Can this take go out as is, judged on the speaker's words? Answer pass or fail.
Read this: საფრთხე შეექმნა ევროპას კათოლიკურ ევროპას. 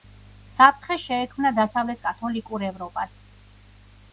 fail